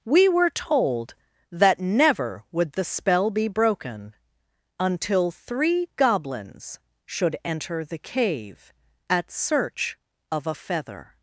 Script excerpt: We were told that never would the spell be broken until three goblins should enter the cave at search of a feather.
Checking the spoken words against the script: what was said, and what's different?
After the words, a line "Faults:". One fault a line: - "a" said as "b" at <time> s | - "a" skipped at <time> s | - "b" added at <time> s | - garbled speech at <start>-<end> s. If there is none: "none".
We were told that never would the spell be broken until three goblins should enter the cave at search of a feather.
Faults:
none